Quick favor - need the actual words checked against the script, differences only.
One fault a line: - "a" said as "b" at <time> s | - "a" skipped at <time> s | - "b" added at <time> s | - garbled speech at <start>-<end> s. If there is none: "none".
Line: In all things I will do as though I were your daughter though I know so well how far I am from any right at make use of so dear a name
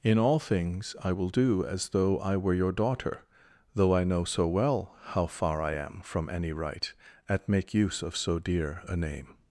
none